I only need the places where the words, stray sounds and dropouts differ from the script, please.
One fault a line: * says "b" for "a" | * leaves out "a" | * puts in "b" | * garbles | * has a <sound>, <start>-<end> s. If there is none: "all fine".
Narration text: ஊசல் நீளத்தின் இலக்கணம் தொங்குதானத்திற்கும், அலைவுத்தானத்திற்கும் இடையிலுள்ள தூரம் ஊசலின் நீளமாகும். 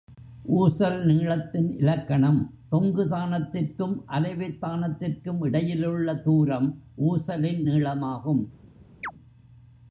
* has a chirp, 9.0-9.1 s